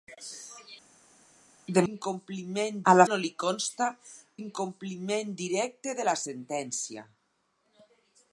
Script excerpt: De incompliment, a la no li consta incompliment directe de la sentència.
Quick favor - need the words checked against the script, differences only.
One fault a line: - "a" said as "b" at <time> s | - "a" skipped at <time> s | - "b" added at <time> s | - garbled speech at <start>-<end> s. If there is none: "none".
none